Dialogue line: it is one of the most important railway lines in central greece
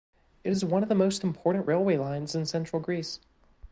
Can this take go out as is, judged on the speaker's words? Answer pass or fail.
pass